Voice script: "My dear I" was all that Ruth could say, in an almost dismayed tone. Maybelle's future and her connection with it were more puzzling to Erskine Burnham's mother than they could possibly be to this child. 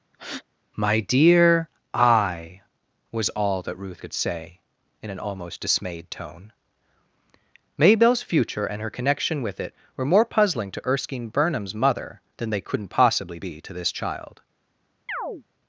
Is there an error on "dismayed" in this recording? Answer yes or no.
no